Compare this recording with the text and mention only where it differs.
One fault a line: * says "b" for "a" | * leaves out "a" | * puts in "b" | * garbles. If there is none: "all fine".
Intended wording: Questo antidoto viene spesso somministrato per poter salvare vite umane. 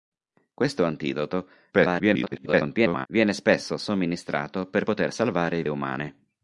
* garbles
* leaves out "vite"